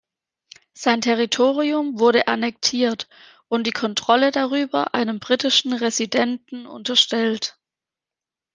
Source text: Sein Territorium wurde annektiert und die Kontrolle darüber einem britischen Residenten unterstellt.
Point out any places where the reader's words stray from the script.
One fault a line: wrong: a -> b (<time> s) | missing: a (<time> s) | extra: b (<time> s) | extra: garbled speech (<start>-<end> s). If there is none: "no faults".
no faults